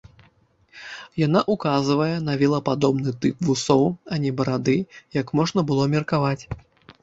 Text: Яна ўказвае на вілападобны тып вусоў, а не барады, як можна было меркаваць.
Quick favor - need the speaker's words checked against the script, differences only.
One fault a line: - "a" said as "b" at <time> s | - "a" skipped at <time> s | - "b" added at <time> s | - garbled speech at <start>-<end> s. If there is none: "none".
none